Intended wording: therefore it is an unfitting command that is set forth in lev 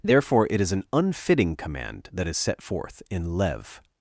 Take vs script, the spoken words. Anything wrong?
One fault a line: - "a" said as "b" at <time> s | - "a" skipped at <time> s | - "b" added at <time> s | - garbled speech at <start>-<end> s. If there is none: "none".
none